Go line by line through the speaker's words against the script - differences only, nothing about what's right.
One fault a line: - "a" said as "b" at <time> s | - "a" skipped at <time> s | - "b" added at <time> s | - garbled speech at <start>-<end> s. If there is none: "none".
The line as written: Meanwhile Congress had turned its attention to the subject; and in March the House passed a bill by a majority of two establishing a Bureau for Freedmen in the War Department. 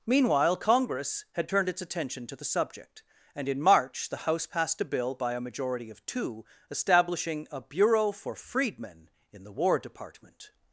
none